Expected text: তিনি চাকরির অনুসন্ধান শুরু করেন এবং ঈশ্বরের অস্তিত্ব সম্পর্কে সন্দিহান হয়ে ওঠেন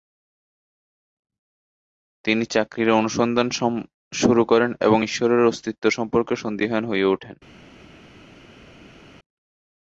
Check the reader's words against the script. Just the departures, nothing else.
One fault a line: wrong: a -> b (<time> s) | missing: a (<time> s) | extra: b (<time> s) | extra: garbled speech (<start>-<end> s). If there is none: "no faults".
no faults